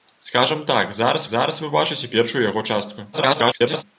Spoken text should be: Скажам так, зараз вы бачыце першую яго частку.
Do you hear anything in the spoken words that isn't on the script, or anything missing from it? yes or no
yes